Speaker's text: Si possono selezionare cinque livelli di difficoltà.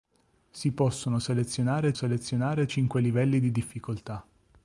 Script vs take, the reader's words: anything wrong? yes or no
yes